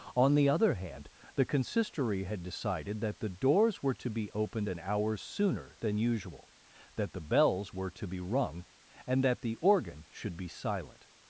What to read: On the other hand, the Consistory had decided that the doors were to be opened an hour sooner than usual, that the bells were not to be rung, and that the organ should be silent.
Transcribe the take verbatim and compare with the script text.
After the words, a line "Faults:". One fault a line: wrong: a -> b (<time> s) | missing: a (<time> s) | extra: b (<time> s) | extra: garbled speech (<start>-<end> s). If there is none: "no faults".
On the other hand, the Consistory had decided that the doors were to be opened an hour sooner than usual, that the bells were to be rung, and that the organ should be silent.
Faults:
missing: not (7.9 s)